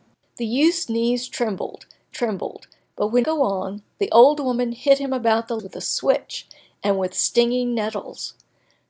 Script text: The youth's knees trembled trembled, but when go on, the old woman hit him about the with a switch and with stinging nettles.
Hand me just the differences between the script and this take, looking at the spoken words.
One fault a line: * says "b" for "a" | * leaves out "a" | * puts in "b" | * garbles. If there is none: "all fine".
all fine